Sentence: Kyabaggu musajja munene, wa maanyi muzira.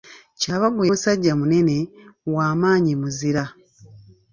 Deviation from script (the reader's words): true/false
false